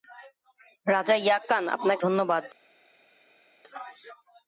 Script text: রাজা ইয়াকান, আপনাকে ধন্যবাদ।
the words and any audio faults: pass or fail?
pass